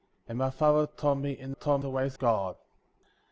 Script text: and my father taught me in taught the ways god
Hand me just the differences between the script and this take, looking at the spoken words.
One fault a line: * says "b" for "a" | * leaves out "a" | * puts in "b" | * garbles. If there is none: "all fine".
all fine